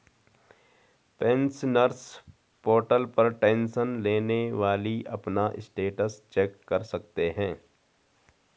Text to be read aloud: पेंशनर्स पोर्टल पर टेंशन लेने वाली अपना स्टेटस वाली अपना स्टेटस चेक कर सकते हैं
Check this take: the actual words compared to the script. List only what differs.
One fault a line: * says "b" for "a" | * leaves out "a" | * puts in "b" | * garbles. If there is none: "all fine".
* leaves out "वाली अपना स्टेटस"